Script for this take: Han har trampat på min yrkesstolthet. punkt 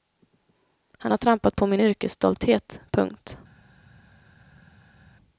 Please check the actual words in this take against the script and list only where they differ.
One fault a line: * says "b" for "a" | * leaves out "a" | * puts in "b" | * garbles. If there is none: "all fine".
all fine